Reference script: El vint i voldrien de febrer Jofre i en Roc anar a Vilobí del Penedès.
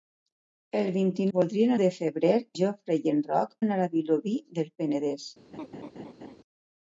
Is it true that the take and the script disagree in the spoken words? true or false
false